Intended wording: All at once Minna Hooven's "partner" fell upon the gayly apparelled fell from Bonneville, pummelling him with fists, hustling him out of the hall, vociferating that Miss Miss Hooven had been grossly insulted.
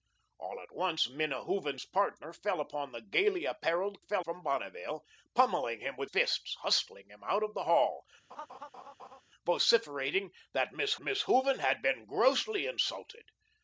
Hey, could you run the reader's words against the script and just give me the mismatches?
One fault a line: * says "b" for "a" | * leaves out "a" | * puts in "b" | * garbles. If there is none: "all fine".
all fine